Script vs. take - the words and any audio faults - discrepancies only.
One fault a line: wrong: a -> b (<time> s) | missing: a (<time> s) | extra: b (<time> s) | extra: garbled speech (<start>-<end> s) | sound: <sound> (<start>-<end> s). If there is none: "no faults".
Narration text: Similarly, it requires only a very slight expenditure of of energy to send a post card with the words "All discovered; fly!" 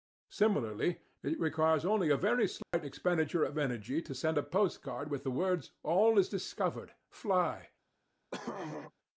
sound: dropout (2.6-2.7 s)
missing: of (3.5 s)
extra: is (6.2 s)
sound: throat clearing (8.3-8.9 s)